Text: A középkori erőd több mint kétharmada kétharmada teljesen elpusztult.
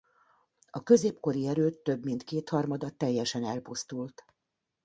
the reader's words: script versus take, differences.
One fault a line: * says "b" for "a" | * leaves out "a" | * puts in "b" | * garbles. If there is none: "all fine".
* leaves out "kétharmada"